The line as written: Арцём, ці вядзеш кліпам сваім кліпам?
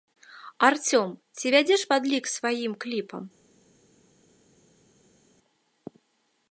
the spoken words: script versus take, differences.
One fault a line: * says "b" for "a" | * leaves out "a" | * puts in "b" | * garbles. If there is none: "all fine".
* says "падлік" for "кліпам"